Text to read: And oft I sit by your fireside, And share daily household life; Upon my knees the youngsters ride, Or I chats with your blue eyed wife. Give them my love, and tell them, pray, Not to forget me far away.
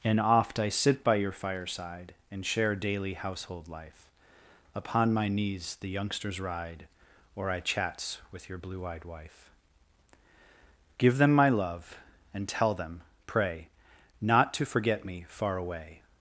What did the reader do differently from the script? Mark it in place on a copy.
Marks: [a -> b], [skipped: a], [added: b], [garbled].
And oft I sit by your fireside, And share daily household life; Upon my knees the youngsters ride, Or I chats with your blue eyed wife. Give them my love, and tell them, pray, Not to forget me far away.